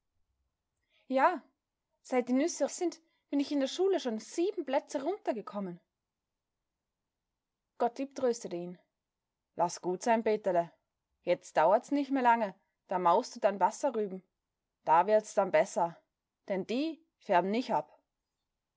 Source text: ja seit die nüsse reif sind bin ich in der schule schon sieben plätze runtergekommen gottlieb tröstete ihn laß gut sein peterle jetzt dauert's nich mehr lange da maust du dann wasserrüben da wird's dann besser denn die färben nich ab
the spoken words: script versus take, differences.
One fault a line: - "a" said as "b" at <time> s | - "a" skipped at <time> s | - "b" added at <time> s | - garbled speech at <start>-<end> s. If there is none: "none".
- "reif" skipped at 2.7 s